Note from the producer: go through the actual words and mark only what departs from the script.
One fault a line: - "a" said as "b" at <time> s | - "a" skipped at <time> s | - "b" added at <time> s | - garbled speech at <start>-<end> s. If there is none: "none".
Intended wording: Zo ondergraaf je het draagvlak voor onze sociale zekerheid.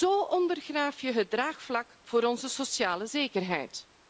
none